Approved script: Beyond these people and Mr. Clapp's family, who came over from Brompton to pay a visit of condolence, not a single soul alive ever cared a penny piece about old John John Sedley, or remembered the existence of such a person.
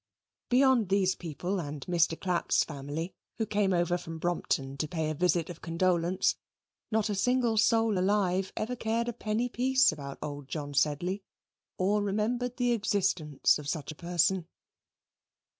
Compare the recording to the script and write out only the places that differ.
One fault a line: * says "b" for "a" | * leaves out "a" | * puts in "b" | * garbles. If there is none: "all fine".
* leaves out "John"